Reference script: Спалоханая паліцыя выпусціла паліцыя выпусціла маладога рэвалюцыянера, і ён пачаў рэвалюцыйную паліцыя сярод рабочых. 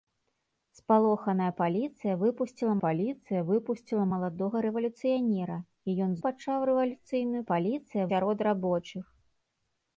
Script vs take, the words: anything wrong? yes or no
no